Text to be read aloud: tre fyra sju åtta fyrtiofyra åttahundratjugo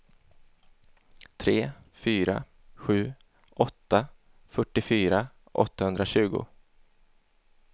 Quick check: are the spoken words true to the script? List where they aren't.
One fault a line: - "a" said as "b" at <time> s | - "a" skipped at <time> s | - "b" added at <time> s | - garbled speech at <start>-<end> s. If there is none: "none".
none